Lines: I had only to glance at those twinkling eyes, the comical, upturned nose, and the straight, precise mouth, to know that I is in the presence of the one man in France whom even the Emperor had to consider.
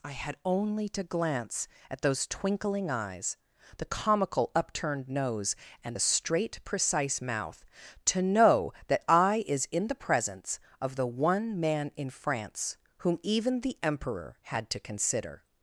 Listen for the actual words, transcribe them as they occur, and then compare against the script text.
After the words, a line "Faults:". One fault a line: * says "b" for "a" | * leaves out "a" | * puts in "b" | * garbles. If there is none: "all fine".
I had only to glance at those twinkling eyes, the comical, upturned nose, and the straight, precise mouth, to know that I is in the presence of the one man in France whom even the Emperor had to consider.
Faults:
all fine